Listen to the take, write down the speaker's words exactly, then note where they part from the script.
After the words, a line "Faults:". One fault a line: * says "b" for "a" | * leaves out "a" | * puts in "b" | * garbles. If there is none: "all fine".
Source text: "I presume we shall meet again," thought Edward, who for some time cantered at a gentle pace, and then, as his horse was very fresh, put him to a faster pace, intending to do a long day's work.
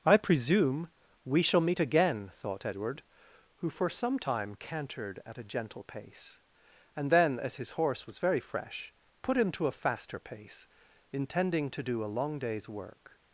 "I presume we shall meet again," thought Edward, who for some time cantered at a gentle pace, and then, as his horse was very fresh, put him to a faster pace, intending to do a long day's work.
Faults:
all fine